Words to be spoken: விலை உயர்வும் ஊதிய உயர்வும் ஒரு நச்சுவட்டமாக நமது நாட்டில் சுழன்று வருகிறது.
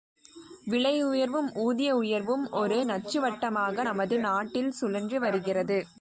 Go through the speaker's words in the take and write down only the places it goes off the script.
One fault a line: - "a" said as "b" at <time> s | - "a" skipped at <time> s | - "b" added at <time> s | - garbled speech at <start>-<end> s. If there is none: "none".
none